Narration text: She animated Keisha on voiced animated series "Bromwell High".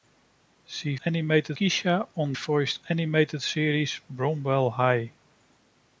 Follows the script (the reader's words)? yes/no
yes